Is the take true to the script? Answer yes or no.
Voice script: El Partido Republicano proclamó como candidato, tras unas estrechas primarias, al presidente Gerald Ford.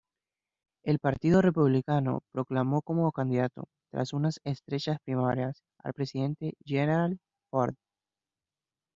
yes